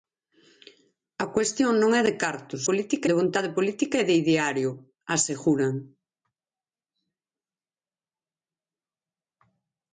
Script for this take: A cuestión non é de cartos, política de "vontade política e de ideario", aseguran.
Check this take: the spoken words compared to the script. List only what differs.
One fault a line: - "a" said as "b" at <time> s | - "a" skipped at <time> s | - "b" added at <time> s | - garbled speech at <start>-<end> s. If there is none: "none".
none